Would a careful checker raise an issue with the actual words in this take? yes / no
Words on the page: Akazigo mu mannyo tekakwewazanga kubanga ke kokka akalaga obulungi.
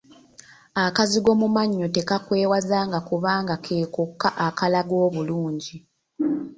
no